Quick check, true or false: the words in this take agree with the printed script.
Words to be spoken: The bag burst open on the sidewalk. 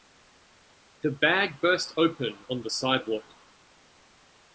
true